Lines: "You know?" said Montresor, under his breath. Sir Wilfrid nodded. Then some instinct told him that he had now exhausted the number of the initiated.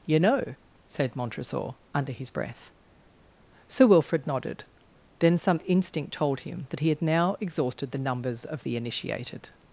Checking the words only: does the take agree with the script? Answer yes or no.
no